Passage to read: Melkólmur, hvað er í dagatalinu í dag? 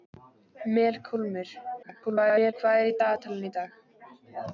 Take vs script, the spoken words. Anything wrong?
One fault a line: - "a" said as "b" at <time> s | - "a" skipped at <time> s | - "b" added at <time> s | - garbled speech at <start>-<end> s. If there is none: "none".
- garbled speech at 1.8-2.5 s